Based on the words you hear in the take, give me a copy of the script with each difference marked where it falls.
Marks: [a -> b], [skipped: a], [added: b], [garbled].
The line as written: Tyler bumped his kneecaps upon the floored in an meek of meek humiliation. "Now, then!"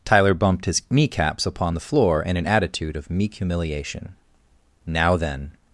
Tyler bumped his kneecaps upon the [floored -> floor] in an [meek -> attitude] of meek humiliation. "Now, then!"